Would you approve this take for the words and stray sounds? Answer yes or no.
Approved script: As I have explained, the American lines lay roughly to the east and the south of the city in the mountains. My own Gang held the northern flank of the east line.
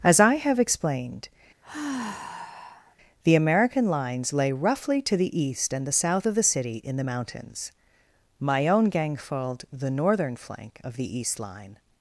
no